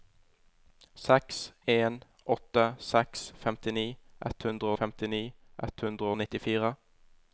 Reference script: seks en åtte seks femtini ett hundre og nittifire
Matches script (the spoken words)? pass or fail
fail